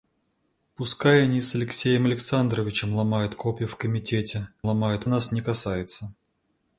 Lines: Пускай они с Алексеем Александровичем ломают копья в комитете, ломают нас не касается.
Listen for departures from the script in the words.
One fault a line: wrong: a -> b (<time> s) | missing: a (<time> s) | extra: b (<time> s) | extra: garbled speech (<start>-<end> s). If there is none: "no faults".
no faults